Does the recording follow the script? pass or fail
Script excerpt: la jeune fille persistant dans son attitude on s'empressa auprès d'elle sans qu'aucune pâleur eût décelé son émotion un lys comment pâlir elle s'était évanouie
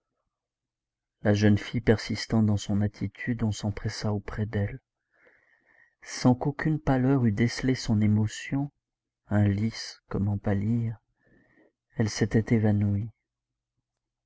pass